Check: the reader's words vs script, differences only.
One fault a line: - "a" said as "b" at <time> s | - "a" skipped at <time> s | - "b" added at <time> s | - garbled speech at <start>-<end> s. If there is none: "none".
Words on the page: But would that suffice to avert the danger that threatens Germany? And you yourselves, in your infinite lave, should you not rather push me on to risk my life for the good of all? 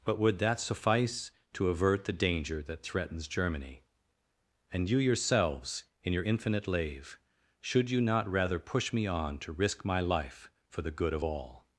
none